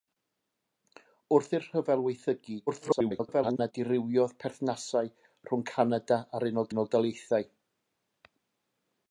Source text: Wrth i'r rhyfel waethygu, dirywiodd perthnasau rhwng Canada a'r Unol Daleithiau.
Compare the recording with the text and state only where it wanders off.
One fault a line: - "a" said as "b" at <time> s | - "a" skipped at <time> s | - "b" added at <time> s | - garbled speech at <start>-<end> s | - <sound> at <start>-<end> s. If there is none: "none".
- garbled speech at 2.7-3.7 s
- "Unol" added at 6.7 s